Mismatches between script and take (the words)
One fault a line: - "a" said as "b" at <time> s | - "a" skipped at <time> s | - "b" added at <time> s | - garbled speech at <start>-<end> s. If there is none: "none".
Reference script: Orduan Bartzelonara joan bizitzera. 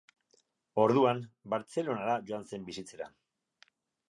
- "zen" added at 2.5 s